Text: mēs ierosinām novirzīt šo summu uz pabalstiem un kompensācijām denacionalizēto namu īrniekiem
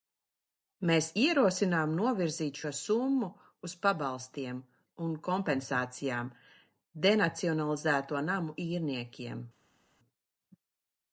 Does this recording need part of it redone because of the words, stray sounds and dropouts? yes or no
no